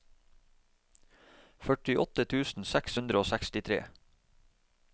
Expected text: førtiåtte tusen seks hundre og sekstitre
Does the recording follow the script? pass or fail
pass